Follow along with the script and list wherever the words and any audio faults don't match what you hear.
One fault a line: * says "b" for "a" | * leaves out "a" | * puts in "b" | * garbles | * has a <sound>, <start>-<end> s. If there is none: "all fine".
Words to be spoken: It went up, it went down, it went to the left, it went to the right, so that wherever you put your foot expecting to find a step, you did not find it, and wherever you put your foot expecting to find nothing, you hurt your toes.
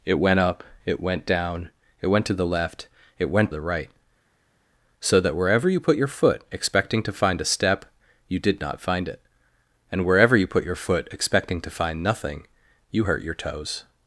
* leaves out "to"